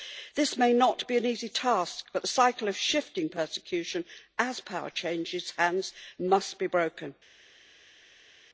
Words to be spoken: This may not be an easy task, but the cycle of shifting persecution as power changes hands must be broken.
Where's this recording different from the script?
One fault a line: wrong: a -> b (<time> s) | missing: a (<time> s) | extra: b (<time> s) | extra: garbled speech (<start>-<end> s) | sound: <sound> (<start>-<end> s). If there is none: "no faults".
no faults